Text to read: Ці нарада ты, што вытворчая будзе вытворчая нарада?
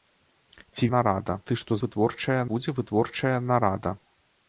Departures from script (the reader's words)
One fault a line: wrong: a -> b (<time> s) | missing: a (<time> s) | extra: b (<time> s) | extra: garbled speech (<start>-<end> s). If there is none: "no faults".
no faults